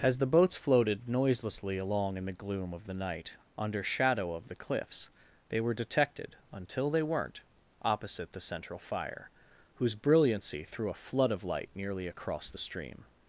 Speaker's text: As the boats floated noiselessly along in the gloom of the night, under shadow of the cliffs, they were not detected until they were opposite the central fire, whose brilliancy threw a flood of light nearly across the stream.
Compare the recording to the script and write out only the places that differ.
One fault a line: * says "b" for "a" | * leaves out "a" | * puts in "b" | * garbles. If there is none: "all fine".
* leaves out "not"
* says "weren't" for "were"